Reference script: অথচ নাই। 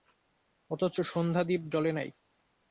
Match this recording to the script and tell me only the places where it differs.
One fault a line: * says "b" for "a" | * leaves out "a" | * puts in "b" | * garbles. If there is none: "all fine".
* puts in "সন্ধ্যাদীপ জ্বলে"